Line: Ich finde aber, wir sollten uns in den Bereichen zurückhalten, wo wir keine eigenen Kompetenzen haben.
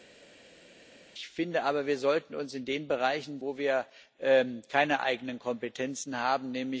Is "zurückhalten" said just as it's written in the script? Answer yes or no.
no